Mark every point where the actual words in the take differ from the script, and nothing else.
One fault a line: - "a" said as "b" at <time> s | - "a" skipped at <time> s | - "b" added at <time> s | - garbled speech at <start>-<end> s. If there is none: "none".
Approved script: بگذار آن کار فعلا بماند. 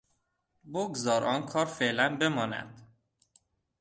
none